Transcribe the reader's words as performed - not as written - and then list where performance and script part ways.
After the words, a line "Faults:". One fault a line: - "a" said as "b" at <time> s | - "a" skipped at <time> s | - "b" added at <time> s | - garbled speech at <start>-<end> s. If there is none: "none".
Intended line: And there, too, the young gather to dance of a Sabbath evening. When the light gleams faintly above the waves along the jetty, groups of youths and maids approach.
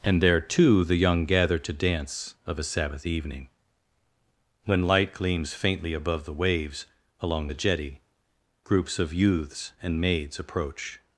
And there, too, the young gather to dance of a Sabbath evening. When light gleams faintly above the waves along the jetty, groups of youths and maids approach.
Faults:
- "the" skipped at 4.9 s